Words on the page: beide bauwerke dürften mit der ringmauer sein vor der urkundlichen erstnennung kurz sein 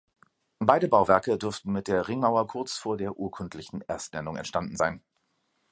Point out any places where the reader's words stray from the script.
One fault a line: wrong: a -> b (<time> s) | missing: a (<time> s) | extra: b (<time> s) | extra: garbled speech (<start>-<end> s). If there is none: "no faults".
wrong: sein -> kurz (2.5 s)
wrong: kurz -> entstanden (4.3 s)